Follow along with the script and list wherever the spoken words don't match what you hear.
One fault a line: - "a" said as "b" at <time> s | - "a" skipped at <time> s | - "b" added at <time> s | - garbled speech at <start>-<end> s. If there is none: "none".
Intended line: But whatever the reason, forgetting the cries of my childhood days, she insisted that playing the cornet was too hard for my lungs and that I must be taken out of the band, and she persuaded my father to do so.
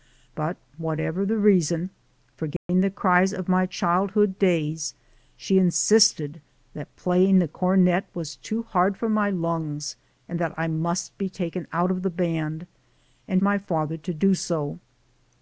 - "she persuaded" skipped at 13.4 s